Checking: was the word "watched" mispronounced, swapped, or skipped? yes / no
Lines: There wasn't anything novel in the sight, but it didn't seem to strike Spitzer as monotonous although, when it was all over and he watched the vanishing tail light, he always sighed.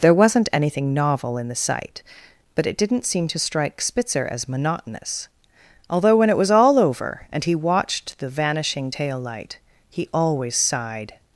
no